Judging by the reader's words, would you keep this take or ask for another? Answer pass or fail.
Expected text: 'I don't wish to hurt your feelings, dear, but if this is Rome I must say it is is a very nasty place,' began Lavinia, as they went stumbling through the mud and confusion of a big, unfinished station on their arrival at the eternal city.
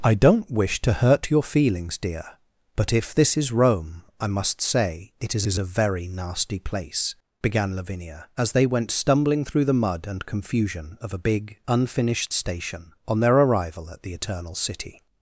pass